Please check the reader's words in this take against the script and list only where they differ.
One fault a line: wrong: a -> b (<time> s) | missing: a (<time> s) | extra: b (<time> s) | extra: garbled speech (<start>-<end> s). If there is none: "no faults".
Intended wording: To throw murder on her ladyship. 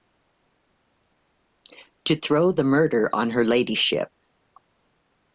extra: the (2.5 s)